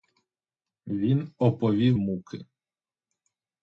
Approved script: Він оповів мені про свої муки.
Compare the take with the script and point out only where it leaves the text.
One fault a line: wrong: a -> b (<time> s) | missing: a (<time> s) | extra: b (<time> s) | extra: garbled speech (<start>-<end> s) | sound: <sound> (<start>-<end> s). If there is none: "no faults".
missing: мені про свої (2.0 s)